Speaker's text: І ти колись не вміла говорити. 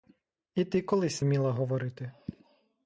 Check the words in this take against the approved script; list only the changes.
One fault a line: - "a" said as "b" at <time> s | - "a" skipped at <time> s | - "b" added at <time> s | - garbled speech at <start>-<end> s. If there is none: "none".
- "не" skipped at 1.2 s